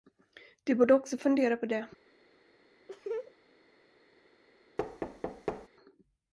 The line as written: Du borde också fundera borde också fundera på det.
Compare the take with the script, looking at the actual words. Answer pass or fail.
fail